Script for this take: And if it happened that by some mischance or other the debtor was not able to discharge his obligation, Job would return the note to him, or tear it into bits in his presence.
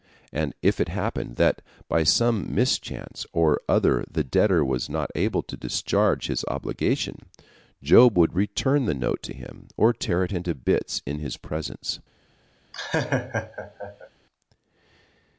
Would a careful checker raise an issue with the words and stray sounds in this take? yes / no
yes